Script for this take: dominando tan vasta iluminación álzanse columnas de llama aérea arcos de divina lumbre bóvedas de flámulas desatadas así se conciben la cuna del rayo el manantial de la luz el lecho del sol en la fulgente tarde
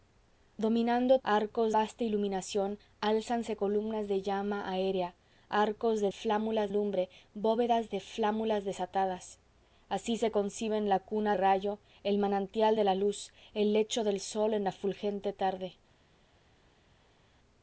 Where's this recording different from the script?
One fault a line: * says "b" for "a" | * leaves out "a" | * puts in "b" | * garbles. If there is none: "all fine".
* says "arcos" for "tan"
* says "flámulas" for "divina"
* leaves out "del"